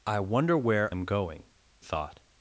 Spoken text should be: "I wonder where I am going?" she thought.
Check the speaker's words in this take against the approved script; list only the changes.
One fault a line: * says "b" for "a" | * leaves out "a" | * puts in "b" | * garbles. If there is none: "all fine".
* leaves out "I"
* leaves out "she"